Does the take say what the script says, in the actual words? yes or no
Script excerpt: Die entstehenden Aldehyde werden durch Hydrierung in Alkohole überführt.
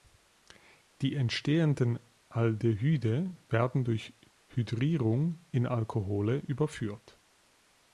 yes